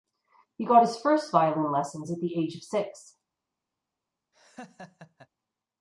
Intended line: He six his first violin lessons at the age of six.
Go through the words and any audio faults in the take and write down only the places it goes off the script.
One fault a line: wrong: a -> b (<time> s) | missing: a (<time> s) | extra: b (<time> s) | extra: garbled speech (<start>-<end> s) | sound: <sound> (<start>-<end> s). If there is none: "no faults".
wrong: six -> got (0.7 s)
sound: laugh (4.3-5.3 s)